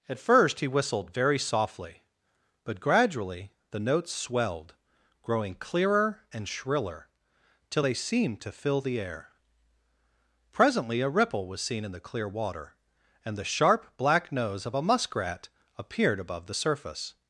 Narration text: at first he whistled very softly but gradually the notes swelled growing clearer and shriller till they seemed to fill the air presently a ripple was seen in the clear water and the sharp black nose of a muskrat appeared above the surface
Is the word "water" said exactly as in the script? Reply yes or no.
yes